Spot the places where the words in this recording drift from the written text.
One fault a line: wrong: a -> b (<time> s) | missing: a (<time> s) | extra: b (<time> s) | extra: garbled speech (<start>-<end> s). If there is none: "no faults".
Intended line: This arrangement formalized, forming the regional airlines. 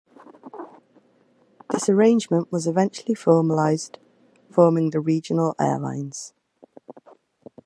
extra: was eventually (2.5 s)